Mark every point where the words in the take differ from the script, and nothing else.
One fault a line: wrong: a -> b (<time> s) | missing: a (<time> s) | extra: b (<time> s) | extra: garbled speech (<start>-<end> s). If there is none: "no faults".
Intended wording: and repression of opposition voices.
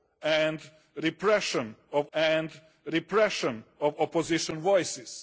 extra: and repression of (2.1 s)